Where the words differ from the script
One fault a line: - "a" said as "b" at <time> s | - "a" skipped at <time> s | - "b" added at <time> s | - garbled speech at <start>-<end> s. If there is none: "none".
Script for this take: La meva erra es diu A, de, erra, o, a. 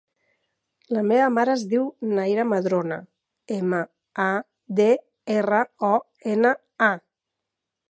- "erra" said as "mare" at 1.3 s
- "Naira Madrona ema" added at 2.2 s
- "ena" added at 6.3 s